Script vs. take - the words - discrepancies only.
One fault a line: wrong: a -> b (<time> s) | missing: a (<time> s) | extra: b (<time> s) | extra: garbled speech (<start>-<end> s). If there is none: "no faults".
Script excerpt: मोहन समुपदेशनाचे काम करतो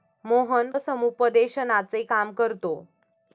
no faults